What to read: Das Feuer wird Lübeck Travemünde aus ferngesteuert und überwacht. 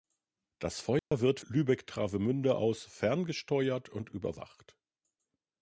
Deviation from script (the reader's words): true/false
false